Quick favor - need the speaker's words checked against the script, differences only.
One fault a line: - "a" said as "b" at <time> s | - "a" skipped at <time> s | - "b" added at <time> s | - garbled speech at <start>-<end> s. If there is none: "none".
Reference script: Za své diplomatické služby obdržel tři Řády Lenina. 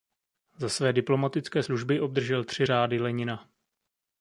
none